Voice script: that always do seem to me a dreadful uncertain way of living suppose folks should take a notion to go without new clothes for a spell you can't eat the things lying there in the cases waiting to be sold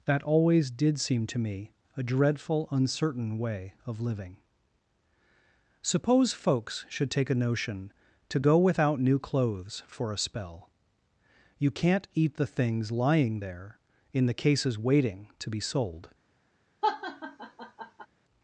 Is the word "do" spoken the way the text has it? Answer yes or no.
no